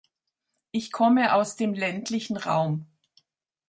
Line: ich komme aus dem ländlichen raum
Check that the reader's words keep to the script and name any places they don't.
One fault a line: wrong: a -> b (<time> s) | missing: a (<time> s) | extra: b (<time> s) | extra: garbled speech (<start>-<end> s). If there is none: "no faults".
no faults